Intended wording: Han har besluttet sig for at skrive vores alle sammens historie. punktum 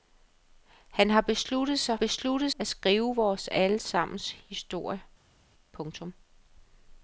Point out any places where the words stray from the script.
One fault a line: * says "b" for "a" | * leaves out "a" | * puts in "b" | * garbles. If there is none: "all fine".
* says "besluttet" for "for"